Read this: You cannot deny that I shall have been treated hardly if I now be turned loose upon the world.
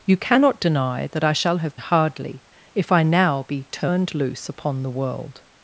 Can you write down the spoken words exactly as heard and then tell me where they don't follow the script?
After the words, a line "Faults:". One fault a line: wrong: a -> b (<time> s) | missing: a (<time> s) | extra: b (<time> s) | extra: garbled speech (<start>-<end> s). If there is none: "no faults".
You cannot deny that I shall have hardly if I now be turned loose upon the world.
Faults:
missing: been treated (1.8 s)